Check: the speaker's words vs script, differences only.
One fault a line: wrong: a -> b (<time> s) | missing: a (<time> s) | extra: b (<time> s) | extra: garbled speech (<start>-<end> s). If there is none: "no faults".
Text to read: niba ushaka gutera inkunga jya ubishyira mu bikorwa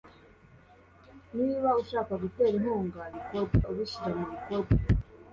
wrong: jya -> bikorwa (3.1 s)